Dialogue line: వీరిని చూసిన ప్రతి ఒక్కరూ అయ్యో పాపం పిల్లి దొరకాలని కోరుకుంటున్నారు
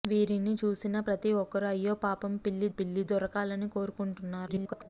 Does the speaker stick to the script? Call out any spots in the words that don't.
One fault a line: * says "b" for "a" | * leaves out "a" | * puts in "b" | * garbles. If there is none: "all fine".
* puts in "పిల్లి"
* garbles